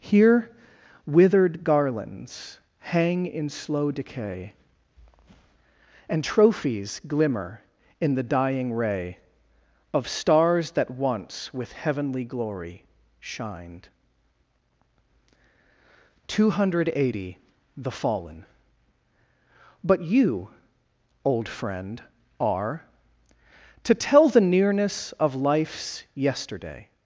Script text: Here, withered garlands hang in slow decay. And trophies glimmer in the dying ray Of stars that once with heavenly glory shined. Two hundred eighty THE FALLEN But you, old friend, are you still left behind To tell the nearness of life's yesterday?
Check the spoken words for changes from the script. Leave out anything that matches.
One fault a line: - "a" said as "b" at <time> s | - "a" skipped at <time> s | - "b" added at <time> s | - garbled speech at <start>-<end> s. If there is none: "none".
- "you still left behind" skipped at 22.9 s